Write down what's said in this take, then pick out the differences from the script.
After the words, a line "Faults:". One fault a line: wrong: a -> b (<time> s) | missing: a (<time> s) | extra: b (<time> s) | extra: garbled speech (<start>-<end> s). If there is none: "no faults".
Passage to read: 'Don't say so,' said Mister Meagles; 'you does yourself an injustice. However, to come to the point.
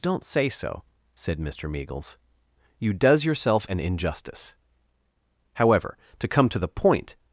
'Don't say so,' said Mister Meagles; 'you does yourself an injustice. However, to come to the point.
Faults:
no faults